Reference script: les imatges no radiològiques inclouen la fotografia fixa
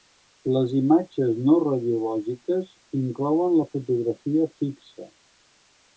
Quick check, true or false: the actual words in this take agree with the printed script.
true